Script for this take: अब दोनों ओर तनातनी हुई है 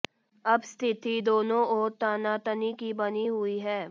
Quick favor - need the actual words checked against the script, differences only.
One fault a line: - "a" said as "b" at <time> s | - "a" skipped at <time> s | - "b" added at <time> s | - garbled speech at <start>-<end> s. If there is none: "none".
- "स्थिति" added at 0.6 s
- "की बनी" added at 2.7 s